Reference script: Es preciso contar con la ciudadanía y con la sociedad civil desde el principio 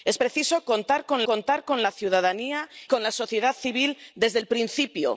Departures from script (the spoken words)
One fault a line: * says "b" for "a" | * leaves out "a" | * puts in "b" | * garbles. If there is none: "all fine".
* puts in "contar con"
* leaves out "y"